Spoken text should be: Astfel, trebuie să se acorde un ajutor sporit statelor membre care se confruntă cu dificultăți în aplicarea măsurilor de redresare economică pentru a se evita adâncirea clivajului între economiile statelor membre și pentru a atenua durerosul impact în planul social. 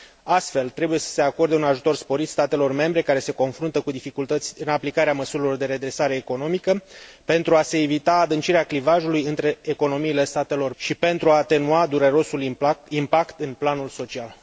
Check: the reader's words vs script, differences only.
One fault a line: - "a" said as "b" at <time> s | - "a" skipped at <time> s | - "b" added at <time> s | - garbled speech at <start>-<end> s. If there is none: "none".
- "membre" skipped at 10.7 s